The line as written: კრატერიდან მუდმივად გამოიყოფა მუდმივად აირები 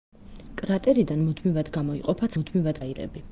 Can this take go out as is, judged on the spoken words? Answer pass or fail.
pass